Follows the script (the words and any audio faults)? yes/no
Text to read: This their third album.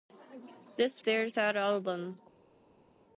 yes